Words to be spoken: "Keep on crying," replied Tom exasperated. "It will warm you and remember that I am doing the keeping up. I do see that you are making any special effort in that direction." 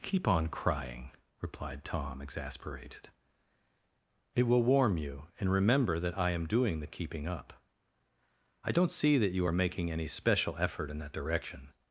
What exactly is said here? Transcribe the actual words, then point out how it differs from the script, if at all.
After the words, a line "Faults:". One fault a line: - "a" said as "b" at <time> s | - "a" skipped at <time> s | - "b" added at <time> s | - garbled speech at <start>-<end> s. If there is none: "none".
"Keep on crying," replied Tom exasperated. "It will warm you and remember that I am doing the keeping up. I don't see that you are making any special effort in that direction."
Faults:
- "do" said as "don't" at 8.7 s